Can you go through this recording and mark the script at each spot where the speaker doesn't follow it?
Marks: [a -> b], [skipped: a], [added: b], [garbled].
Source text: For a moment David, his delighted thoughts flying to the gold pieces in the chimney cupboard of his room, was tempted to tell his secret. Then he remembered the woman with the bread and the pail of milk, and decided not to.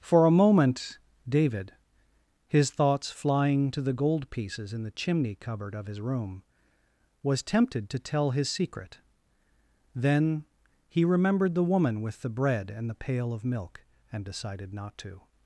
For a moment David, his [skipped: delighted] thoughts flying to the gold pieces in the chimney cupboard of his room, was tempted to tell his secret. Then he remembered the woman with the bread and the pail of milk, and decided not to.